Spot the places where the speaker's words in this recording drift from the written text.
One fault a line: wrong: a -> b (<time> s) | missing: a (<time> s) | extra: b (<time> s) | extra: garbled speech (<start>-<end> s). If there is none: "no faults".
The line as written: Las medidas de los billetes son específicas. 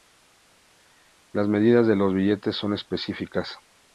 no faults